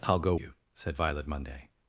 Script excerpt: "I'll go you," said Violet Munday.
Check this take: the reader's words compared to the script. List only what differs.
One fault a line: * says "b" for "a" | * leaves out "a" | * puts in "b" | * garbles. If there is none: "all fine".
all fine